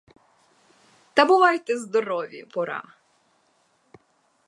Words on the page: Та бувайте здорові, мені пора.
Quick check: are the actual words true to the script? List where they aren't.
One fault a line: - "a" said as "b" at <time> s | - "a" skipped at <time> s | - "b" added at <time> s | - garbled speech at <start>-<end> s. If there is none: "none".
- "мені" skipped at 2.5 s